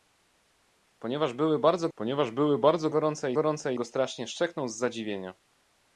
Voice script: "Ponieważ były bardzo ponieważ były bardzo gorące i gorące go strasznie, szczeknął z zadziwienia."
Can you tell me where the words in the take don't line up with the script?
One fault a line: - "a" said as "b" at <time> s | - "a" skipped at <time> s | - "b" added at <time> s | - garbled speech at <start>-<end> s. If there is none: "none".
none